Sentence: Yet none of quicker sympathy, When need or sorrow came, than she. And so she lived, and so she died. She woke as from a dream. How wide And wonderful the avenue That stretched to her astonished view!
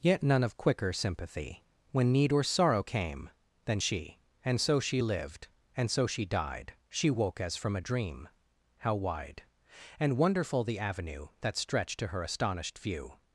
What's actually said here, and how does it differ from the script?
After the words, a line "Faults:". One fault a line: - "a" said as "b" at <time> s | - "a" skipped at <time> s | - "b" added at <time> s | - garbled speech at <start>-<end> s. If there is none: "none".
Yet none of quicker sympathy, When need or sorrow came, than she. And so she lived, and so she died. She woke as from a dream. How wide And wonderful the avenue That stretched to her astonished view!
Faults:
none